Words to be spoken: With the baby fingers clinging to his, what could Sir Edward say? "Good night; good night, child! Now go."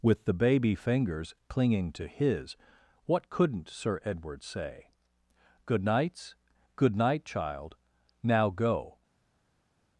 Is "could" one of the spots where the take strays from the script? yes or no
yes